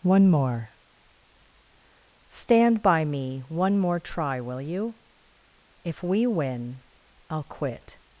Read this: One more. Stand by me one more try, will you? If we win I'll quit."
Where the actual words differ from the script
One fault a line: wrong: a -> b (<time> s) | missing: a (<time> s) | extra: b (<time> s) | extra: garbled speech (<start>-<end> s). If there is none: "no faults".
no faults